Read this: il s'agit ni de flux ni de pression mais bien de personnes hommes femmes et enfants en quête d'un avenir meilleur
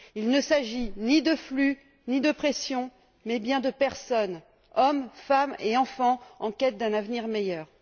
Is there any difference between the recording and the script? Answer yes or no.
yes